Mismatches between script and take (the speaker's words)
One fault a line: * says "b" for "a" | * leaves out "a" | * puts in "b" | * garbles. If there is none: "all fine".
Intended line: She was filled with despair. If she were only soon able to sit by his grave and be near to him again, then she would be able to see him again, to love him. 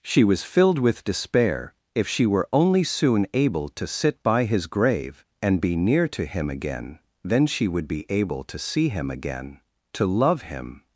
all fine